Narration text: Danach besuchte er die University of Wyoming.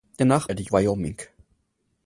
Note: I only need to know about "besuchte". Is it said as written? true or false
false